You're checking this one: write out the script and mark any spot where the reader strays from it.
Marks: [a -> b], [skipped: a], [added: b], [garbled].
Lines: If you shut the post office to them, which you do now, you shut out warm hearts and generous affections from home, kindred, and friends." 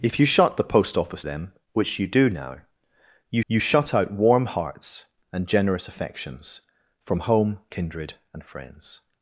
If you shut the post office [skipped: to] them, which you do now, you [added: you] shut out warm hearts and generous affections from home, kindred, and friends."